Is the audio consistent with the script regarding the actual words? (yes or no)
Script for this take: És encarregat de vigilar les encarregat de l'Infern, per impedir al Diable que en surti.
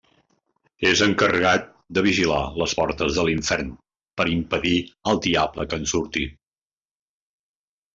no